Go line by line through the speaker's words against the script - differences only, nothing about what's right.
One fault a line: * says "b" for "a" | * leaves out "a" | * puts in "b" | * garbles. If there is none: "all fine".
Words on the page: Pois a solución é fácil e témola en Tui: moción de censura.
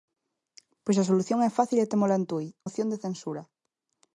all fine